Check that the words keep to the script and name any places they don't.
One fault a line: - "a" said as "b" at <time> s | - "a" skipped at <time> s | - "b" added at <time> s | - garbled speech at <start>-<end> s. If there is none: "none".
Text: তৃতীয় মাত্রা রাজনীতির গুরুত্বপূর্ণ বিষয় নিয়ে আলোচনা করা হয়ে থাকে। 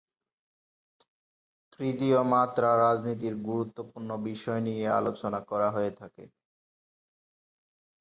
none